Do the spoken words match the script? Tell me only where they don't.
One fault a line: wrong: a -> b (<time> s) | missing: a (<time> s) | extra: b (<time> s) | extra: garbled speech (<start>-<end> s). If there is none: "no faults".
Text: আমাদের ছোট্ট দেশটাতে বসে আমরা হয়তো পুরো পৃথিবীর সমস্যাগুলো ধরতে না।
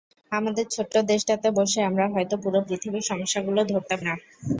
no faults